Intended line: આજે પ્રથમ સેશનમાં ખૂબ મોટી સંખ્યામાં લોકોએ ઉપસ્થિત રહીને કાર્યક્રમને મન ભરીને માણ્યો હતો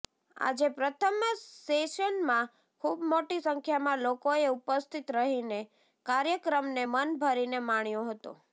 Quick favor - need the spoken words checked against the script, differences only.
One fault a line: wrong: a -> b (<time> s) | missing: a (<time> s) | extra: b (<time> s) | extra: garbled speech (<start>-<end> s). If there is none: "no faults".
no faults